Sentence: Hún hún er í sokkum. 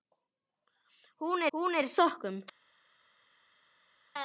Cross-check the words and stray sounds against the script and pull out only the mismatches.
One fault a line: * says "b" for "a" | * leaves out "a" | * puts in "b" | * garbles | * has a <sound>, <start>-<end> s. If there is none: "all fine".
all fine